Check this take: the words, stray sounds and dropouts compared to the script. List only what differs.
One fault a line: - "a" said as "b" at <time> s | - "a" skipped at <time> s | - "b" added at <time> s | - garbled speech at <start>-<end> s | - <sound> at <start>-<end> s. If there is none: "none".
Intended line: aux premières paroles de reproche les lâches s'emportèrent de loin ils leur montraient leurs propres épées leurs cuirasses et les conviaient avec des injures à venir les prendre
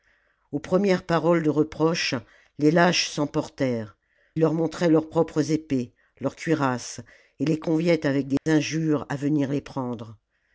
- "de loin ils" skipped at 4.0 s
- dropout at 8.4-8.5 s